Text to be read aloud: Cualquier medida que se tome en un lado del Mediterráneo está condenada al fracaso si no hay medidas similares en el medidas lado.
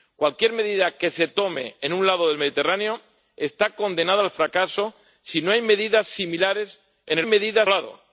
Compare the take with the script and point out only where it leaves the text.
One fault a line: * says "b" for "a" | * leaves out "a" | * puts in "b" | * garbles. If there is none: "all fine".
all fine